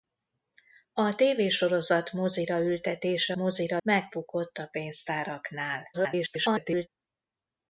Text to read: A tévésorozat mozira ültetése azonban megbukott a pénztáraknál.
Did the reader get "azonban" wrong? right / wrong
wrong